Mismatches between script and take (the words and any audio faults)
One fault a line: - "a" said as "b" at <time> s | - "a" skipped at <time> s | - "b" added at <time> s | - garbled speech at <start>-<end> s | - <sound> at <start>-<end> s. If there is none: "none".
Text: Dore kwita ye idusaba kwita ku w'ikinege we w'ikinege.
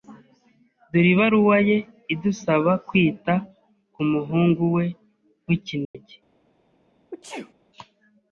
- "kwita" said as "ibaruwa" at 1.1 s
- "w'ikinege" said as "muhungu" at 4.1 s
- dropout at 5.8-5.9 s
- sneeze at 7.1-7.5 s